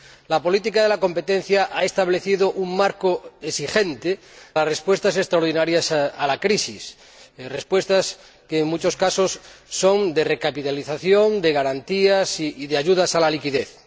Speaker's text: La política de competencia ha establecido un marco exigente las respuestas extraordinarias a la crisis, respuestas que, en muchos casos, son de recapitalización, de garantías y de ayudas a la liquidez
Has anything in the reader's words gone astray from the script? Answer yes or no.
no